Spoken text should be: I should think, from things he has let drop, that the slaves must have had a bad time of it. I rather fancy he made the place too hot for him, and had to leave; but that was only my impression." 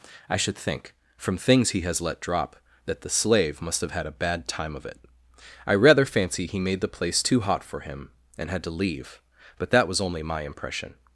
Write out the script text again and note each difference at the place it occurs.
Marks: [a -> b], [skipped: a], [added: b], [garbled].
I should think, from things he has let drop, that the [slaves -> slave] must have had a bad time of it. I rather fancy he made the place too hot for him, and had to leave; but that was only my impression."